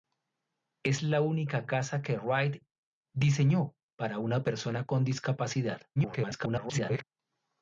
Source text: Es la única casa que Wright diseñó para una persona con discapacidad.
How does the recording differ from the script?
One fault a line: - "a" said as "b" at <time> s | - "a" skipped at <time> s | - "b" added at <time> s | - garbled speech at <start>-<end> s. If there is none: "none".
- garbled speech at 6.0-7.0 s